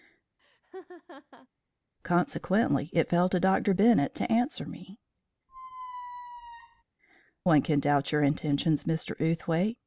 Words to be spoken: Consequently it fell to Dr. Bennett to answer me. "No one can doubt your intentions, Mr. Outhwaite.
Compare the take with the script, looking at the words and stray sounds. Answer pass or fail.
fail